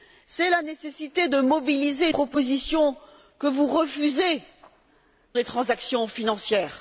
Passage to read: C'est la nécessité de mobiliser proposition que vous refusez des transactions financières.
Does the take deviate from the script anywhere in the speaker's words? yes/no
no